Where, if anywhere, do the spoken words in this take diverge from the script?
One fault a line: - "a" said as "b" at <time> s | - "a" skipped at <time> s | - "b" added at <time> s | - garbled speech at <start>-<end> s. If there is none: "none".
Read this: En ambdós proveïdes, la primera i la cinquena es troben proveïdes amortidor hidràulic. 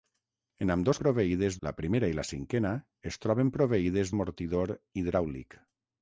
none